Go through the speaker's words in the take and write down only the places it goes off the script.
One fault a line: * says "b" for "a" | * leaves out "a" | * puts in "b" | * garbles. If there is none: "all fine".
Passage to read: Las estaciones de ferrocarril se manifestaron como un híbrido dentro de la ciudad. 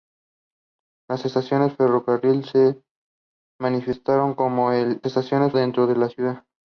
* says "estaciones" for "híbrido"